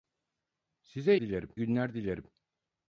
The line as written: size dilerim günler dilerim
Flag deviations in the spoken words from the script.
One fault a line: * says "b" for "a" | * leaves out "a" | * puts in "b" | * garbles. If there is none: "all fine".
all fine